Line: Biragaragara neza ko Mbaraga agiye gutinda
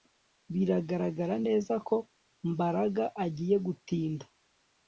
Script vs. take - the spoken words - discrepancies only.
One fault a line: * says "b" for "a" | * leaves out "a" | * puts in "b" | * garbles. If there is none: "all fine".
all fine